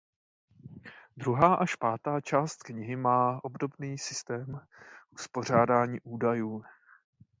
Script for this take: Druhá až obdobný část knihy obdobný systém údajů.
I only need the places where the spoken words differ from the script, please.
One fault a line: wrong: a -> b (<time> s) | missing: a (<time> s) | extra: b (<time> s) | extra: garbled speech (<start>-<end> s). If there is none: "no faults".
wrong: obdobný -> pátá (1.7 s)
extra: má (3.0 s)
extra: uspořádání (5.1 s)